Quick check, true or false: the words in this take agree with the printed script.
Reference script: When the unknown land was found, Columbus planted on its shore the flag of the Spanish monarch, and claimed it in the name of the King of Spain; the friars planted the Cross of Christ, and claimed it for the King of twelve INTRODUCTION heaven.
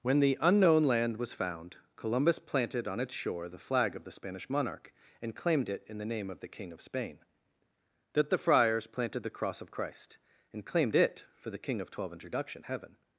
false